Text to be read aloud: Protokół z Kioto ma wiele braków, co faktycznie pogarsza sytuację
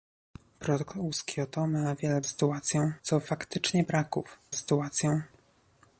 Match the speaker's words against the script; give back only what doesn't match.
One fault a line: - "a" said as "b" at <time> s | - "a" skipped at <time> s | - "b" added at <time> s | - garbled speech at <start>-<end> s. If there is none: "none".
- "braków" said as "sytuację" at 2.2 s
- "pogarsza" said as "braków" at 3.8 s